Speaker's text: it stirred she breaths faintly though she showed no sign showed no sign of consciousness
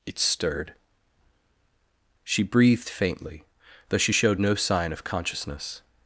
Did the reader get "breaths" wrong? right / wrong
wrong